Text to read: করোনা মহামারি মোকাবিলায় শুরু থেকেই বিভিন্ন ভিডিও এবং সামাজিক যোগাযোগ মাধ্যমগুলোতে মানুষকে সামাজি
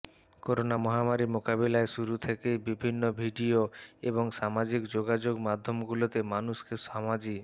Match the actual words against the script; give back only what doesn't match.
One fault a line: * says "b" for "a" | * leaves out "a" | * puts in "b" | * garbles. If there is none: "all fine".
all fine